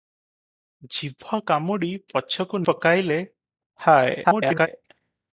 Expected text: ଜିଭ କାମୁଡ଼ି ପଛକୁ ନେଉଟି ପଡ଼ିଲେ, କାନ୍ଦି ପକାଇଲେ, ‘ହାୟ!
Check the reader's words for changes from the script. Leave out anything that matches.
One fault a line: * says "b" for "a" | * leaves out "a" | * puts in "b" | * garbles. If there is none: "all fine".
* leaves out "ନେଉଟି ପଡ଼ିଲେ କାନ୍ଦି"
* garbles